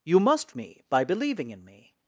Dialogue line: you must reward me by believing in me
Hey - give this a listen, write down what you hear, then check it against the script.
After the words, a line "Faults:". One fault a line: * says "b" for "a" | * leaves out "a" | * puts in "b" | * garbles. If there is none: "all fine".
you must me by believing in me
Faults:
* leaves out "reward"